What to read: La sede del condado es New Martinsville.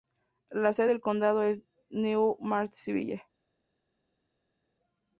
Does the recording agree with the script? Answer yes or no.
yes